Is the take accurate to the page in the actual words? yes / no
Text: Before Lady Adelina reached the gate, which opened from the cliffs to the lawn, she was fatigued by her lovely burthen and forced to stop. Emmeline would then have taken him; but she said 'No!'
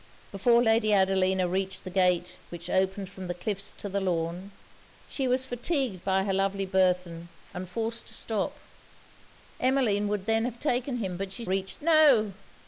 no